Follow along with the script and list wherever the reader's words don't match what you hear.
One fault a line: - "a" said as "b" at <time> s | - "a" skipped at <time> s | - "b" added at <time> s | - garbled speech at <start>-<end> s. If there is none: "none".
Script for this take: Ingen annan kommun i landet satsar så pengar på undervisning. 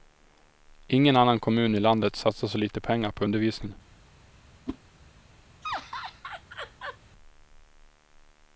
- "lite" added at 2.6 s